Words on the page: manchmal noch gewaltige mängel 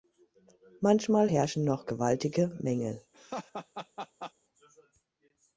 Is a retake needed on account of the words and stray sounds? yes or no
yes